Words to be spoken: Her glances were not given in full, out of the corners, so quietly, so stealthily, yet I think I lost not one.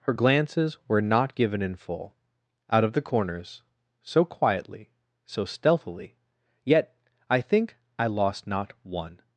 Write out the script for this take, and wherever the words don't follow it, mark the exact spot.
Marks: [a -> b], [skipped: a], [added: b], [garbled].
Her glances were not given in full, out of the corners, so quietly, so stealthily, yet I think I lost not one.